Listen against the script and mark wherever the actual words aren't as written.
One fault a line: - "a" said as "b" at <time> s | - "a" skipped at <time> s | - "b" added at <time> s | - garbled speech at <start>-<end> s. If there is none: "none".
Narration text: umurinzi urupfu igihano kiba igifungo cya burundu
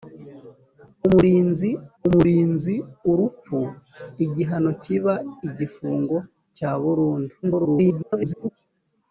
- "umurinzi" added at 2.1 s
- garbled speech at 7.4-8.5 s